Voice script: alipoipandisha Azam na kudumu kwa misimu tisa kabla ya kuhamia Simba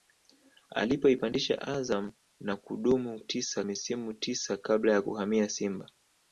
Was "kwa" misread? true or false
true